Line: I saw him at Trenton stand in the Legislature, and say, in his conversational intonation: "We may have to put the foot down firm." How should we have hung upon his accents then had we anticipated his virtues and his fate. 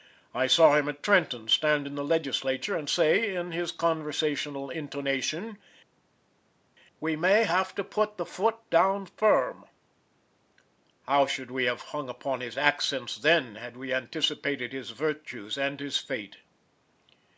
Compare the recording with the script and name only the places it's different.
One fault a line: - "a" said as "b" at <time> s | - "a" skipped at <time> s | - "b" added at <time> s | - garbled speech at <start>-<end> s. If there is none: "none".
none